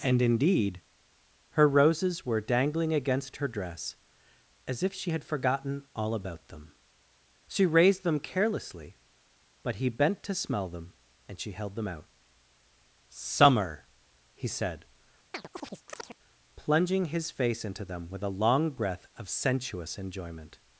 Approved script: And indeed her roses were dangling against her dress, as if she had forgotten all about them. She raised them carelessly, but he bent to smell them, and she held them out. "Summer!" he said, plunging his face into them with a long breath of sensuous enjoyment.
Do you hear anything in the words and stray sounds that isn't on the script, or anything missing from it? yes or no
yes